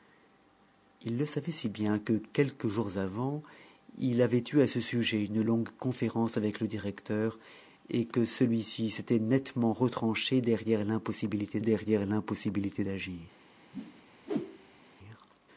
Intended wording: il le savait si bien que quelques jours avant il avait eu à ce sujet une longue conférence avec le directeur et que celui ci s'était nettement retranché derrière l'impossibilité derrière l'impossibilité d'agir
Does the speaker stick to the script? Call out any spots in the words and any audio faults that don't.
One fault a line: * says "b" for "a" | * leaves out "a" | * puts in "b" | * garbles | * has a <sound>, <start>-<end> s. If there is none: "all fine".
* has a whoosh, 13.7-14.8 s